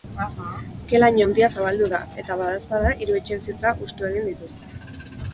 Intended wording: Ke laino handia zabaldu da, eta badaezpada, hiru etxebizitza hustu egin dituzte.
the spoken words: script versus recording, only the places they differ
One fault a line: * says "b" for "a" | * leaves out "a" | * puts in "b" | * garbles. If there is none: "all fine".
all fine